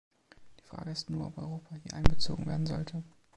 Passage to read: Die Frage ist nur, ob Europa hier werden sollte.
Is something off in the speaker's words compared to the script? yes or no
yes